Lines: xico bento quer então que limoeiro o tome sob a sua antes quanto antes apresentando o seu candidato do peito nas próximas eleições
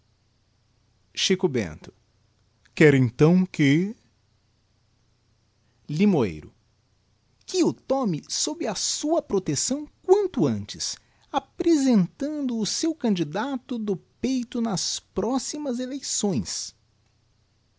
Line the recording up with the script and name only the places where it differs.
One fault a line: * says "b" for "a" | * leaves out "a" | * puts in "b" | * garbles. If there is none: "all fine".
* puts in "que"
* says "protecção" for "antes"